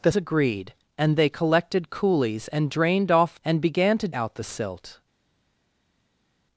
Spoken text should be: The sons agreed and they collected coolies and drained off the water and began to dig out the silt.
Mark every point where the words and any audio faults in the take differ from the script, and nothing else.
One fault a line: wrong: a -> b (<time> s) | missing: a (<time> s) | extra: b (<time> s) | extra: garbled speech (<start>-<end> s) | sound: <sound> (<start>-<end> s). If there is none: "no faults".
missing: sons (0.1 s)
missing: the water (3.4 s)
missing: dig (4.1 s)